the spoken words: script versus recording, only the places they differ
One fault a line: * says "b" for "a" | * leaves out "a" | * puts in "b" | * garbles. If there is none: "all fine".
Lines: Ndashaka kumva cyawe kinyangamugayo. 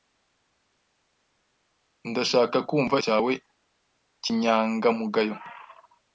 all fine